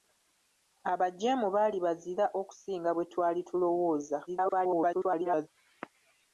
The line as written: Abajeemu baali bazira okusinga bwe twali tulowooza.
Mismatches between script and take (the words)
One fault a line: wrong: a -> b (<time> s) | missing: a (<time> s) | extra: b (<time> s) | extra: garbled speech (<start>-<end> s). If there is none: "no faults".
extra: garbled speech (4.3-5.5 s)